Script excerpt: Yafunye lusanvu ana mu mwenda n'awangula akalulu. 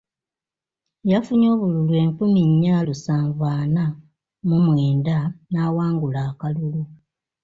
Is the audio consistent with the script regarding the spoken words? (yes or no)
no